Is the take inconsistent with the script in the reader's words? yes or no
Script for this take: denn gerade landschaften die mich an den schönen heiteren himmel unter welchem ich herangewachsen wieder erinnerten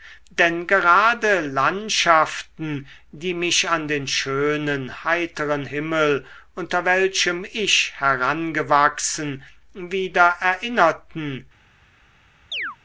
no